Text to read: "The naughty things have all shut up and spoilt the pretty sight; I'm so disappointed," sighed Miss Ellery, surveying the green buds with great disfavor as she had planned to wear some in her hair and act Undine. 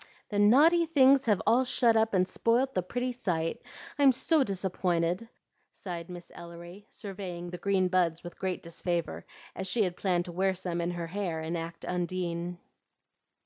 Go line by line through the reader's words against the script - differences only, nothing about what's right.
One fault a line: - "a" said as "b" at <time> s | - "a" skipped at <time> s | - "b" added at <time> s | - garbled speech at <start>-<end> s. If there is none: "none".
none